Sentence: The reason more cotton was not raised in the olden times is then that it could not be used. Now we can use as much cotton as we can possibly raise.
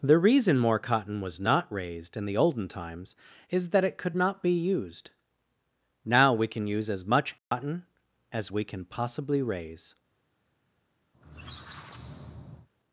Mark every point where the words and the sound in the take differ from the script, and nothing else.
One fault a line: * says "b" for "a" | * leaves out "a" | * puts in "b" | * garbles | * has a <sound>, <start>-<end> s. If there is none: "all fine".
* leaves out "then"
* has a dropout, 7.4-7.5 s
* has a squeak, 11.1-12.7 s